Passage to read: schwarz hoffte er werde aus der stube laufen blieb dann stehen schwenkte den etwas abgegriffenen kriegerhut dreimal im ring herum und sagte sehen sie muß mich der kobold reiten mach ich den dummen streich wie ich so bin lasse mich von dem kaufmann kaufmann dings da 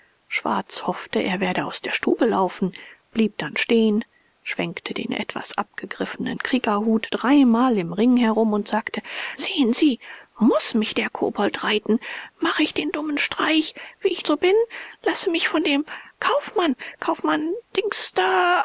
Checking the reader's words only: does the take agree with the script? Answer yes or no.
yes